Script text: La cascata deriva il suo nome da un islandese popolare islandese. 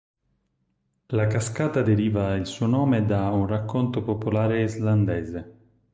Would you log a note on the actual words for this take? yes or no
yes